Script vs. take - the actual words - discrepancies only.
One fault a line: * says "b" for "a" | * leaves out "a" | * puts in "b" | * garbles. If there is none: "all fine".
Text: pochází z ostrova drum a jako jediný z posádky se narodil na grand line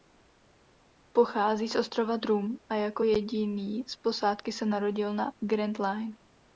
all fine